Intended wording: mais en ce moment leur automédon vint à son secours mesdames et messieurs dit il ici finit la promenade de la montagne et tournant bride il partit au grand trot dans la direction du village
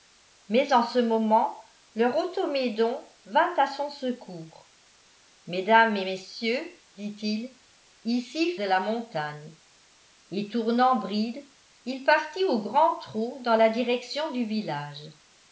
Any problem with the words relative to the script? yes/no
yes